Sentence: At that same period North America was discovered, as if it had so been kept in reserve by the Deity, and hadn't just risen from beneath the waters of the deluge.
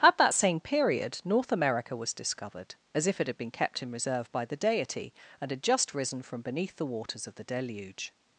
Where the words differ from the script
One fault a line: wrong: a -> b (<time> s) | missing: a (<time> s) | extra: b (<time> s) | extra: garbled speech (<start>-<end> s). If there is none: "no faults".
missing: so (3.4 s)
wrong: hadn't -> had (5.5 s)